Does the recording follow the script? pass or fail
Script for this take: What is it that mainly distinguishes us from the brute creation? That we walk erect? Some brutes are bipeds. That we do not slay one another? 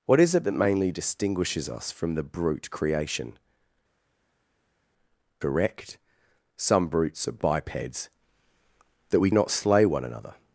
fail